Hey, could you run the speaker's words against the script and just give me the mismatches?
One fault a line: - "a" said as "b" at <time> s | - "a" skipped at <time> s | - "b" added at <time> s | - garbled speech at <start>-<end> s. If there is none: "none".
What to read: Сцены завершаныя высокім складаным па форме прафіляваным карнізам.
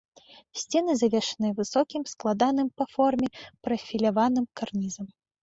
none